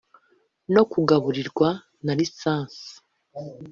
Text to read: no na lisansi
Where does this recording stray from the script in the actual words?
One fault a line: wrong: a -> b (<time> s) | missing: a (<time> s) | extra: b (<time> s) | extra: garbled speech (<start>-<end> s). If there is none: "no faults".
extra: kugaburirwa (0.9 s)